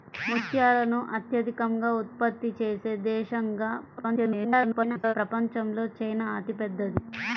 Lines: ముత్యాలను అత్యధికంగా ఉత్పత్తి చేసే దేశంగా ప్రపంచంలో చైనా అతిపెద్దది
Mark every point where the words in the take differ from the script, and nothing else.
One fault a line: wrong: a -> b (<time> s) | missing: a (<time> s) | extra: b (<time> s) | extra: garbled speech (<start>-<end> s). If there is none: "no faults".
extra: garbled speech (4.0-5.1 s)